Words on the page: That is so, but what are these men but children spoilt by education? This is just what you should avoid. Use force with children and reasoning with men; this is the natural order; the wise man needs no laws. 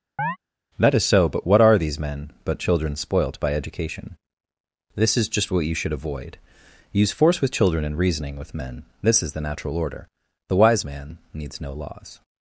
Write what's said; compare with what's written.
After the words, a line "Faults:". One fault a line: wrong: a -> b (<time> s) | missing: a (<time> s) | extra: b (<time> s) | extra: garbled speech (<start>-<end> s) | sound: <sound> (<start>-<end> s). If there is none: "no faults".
That is so, but what are these men but children spoilt by education? This is just what you should avoid. Use force with children and reasoning with men; this is the natural order; the wise man needs no laws.
Faults:
sound: chirp (0.2-0.4 s)